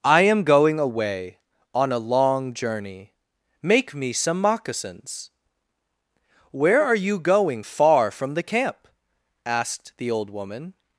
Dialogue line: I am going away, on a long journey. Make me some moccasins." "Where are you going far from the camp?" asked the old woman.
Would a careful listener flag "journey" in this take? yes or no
no